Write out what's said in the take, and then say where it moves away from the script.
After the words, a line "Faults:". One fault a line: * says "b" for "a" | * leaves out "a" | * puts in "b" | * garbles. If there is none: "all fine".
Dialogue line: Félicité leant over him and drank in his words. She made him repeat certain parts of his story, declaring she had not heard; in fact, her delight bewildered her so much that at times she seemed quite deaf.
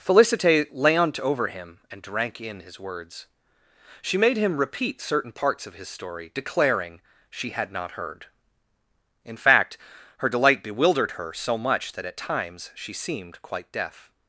Félicité leant over him and drank in his words. She made him repeat certain parts of his story, declaring she had not heard; in fact, her delight bewildered her so much that at times she seemed quite deaf.
Faults:
all fine